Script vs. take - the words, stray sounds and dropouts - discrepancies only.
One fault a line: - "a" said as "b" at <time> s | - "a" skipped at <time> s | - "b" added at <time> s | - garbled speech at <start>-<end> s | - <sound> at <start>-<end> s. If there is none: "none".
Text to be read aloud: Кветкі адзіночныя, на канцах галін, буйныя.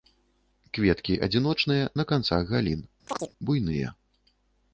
- chirp at 3.1-3.3 s